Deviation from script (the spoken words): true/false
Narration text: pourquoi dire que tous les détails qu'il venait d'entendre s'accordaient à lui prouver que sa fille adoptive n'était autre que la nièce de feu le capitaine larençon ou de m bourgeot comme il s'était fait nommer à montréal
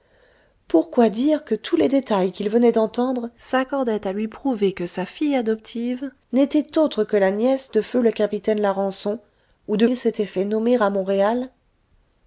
true